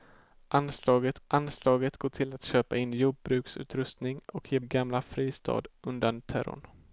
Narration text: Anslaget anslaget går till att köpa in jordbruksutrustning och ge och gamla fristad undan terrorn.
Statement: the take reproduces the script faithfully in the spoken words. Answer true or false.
true